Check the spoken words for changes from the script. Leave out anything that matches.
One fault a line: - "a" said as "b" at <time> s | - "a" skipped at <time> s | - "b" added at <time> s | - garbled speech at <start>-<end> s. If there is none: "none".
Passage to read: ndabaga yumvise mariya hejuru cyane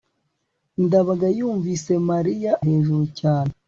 none